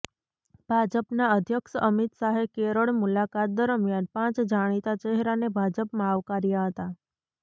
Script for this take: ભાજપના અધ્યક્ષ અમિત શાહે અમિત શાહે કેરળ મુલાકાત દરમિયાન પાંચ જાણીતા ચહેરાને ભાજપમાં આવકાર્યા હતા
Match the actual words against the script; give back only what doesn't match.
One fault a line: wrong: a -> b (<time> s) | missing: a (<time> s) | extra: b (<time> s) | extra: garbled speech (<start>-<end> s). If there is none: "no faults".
missing: અમિત શાહે (2.4 s)